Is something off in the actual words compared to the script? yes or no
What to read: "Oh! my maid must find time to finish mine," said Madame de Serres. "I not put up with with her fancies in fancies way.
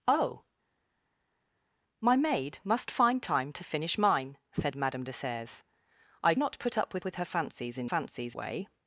no